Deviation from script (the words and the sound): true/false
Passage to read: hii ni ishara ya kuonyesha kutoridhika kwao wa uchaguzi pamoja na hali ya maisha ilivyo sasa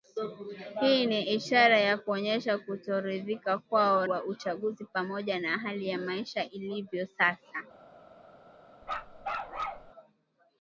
true